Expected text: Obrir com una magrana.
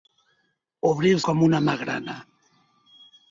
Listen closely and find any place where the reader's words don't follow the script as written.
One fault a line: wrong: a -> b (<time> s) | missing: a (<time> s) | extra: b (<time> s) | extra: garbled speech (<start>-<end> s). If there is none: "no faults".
no faults